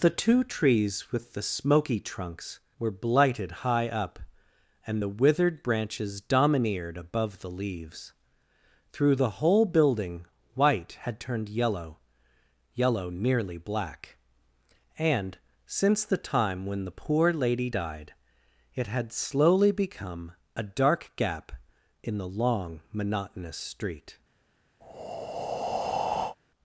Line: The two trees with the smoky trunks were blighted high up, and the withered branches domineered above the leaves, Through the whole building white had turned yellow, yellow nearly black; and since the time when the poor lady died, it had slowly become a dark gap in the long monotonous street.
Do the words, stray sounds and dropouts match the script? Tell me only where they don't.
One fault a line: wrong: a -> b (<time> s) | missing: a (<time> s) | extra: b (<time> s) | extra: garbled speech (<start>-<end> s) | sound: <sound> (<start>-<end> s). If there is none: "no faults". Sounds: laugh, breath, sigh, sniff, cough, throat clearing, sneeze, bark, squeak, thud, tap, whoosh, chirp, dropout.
sound: breath (24.8-26.4 s)